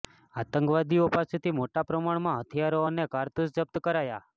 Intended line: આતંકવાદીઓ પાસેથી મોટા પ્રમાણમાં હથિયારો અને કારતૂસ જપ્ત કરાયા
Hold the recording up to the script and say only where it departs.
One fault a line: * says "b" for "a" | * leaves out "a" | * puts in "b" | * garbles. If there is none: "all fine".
all fine